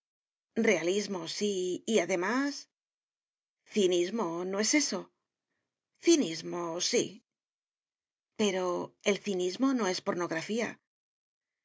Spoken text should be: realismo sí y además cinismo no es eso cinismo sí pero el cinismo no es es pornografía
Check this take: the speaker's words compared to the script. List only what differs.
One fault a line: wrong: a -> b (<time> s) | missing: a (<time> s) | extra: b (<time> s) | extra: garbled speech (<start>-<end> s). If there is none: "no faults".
missing: es (10.0 s)